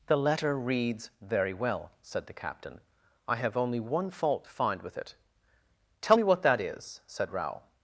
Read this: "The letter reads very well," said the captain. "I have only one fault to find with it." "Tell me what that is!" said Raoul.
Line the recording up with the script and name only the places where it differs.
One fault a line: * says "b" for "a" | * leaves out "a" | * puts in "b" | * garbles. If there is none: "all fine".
all fine